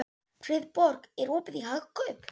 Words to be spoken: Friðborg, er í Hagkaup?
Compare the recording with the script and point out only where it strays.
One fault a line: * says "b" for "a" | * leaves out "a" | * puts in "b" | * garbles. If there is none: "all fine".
* puts in "opið"